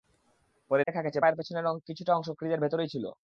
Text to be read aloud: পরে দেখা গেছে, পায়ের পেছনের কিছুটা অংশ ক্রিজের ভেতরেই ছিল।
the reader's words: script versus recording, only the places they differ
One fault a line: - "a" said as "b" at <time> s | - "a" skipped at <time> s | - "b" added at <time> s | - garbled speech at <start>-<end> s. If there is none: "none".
none